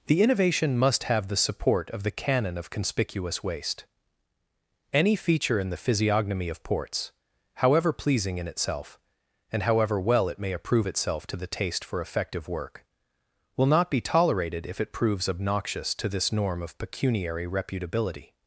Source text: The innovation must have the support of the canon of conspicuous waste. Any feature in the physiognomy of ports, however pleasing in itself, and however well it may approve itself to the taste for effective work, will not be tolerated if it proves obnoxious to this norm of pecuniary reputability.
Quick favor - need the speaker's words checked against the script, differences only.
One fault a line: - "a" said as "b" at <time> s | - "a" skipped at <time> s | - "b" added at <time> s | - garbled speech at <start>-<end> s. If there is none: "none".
none